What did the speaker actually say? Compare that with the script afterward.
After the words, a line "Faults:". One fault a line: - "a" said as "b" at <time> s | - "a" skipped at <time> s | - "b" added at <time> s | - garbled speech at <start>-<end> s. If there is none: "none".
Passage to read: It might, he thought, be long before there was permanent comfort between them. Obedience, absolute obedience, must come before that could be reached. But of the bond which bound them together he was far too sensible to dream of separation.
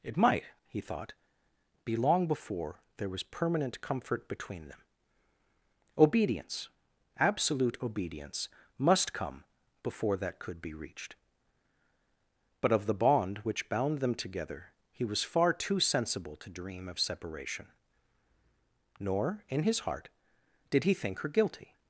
It might, he thought, be long before there was permanent comfort between them. Obedience, absolute obedience, must come before that could be reached. But of the bond which bound them together he was far too sensible to dream of separation. Nor, in his heart, did he think her guilty
Faults:
- "Nor in his heart did he think her guilty" added at 19.0 s